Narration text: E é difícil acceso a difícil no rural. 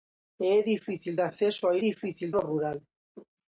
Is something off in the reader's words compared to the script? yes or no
no